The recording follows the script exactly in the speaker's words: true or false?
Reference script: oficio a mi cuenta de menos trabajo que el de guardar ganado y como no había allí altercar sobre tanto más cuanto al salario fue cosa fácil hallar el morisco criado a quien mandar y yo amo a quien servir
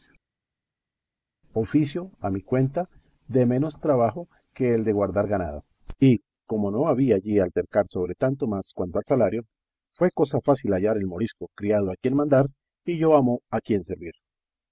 true